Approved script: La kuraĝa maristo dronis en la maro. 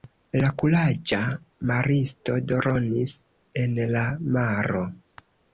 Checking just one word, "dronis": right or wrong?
right